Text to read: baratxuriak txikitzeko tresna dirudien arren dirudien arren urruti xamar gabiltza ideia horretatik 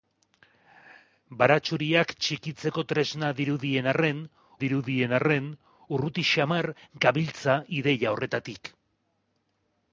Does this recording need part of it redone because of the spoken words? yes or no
no